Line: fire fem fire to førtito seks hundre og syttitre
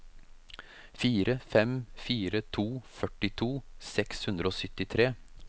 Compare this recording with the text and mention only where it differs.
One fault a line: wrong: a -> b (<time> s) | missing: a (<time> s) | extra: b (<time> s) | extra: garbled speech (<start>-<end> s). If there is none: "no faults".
no faults